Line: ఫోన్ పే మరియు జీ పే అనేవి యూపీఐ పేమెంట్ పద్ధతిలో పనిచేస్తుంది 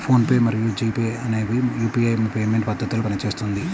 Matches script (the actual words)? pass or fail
pass